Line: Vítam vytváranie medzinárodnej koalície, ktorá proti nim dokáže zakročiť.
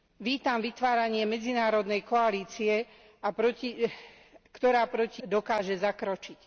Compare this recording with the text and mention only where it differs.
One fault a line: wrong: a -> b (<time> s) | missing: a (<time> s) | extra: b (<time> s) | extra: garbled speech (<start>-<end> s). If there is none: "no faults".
missing: nim (5.2 s)